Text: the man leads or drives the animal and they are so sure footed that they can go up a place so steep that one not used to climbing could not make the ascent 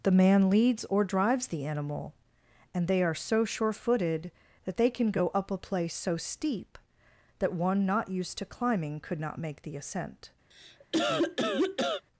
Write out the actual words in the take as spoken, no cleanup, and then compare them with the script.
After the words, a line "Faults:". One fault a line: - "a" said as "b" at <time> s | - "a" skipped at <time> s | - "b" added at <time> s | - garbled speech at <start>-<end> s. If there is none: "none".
the man leads or drives the animal and they are so sure footed that they can go up a place so steep that one not used to climbing could not make the ascent
Faults:
none